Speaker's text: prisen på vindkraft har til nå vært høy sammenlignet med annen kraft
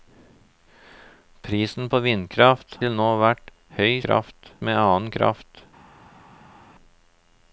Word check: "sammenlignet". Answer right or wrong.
wrong